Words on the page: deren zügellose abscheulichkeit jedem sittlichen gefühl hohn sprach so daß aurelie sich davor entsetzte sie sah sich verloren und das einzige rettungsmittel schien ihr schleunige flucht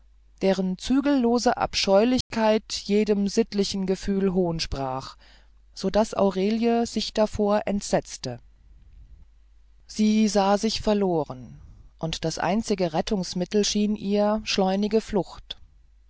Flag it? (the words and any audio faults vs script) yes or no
yes